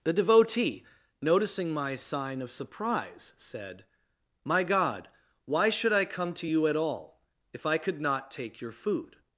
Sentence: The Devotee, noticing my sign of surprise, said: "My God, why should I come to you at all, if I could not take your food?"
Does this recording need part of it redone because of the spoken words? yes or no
no